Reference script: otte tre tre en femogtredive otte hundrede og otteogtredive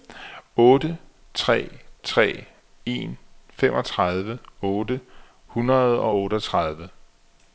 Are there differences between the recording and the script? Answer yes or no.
no